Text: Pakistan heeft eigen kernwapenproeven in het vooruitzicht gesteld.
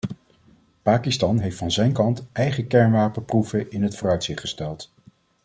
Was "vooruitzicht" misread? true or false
false